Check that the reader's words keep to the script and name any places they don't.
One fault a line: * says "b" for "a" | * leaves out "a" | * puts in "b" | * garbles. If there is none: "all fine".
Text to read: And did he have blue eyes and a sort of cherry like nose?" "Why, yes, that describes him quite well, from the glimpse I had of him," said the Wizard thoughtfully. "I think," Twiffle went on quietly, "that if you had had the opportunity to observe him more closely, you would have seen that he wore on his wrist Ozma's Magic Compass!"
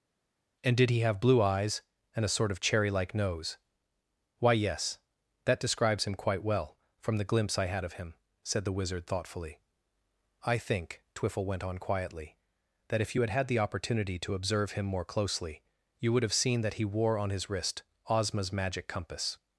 all fine